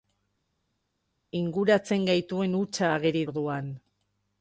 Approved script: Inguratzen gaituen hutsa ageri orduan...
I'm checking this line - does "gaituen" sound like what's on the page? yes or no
yes